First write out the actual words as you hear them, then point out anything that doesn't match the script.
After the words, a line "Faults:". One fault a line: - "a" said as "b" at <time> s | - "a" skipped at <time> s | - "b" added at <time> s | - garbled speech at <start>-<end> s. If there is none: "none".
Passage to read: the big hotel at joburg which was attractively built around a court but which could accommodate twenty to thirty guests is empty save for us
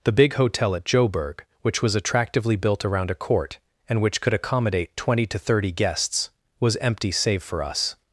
the big hotel at joburg which was attractively built around a court and which could accommodate twenty to thirty guests was empty save for us
Faults:
- "but" said as "and" at 3.9 s
- "is" said as "was" at 6.6 s